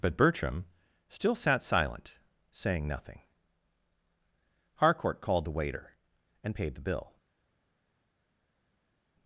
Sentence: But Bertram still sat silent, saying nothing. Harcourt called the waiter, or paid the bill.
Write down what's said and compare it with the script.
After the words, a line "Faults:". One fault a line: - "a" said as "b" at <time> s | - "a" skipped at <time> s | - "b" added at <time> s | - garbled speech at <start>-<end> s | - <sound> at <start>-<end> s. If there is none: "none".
But Bertram still sat silent, saying nothing. Harcourt called the waiter, and paid the bill.
Faults:
- "or" said as "and" at 6.4 s